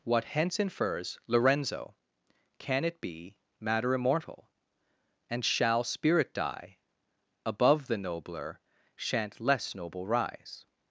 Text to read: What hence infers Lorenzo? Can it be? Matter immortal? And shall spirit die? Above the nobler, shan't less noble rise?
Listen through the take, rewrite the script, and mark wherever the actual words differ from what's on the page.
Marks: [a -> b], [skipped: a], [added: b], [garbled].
What hence infers Lorenzo? Can it be? Matter immortal? And shall spirit die? Above the nobler, shan't less noble rise?